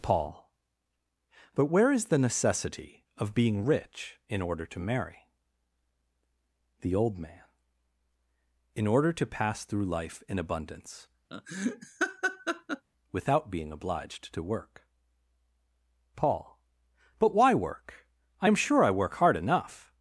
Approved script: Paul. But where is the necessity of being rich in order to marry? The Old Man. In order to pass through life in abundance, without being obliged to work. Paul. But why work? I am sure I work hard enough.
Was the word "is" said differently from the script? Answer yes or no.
no